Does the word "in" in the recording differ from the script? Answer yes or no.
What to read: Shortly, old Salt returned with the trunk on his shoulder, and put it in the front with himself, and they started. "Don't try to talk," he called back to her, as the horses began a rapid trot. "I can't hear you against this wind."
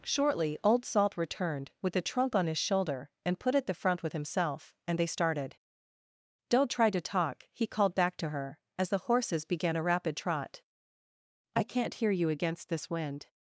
yes